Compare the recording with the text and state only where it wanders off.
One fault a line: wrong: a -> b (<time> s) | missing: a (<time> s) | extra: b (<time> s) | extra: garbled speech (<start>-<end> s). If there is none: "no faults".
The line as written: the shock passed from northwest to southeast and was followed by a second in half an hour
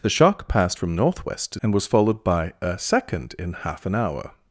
missing: southeast (1.6 s)